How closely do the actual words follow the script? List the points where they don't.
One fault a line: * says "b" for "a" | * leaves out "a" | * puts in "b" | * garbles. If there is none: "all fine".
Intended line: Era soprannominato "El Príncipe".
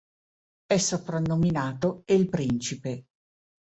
* says "È" for "Era"